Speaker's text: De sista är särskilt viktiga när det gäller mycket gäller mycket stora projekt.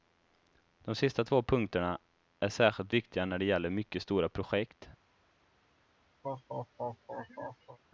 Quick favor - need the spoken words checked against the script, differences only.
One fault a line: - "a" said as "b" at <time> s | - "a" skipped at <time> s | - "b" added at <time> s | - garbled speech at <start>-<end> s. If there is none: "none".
- "två punkterna" added at 1.2 s
- "gäller mycket" skipped at 4.0 s